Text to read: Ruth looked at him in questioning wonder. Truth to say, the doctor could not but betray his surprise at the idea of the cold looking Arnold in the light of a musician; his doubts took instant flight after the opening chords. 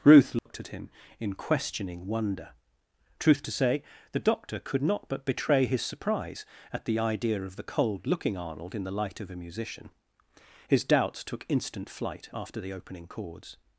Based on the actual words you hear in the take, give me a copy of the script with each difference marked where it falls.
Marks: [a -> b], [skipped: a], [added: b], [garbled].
Ruth looked at him in questioning wonder. Truth to say, the doctor could not but betray his surprise at the idea of the cold looking Arnold in the light of a musician; his doubts took instant flight after the opening chords.